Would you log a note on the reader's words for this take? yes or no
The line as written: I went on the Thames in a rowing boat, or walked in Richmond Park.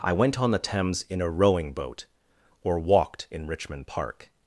no